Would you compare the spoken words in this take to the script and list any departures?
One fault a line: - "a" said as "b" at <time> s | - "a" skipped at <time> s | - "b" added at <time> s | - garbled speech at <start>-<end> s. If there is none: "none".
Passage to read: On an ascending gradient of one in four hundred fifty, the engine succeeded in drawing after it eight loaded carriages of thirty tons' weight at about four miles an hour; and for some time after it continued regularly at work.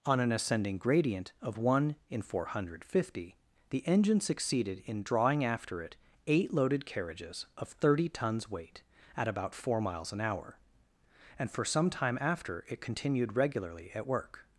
none